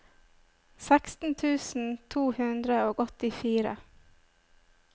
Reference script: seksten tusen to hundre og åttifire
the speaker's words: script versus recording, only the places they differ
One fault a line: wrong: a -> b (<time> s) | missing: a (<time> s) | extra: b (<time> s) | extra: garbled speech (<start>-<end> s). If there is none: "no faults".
no faults